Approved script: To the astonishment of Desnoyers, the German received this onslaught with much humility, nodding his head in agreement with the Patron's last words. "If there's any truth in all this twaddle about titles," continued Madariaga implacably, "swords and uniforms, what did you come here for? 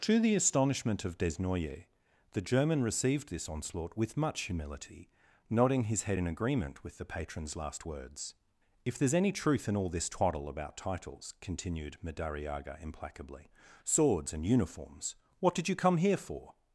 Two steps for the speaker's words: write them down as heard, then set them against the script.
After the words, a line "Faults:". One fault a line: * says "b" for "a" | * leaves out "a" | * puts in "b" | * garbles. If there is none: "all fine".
To the astonishment of Desnoyers, the German received this onslaught with much humility, nodding his head in agreement with the Patron's last words. "If there's any truth in all this twaddle about titles," continued Madariaga implacably, "swords and uniforms, what did you come here for?
Faults:
all fine